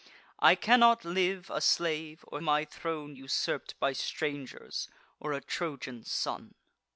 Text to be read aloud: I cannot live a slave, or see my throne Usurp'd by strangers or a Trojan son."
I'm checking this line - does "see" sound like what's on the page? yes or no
no